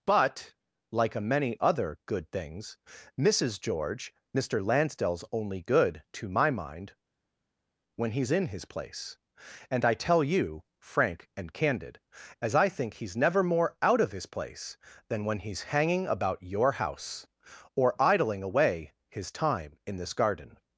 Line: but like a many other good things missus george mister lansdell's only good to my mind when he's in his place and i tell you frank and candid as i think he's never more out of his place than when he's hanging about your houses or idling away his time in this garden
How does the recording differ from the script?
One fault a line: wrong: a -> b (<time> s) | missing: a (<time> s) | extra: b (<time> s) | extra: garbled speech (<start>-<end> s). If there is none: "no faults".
wrong: houses -> house (16.7 s)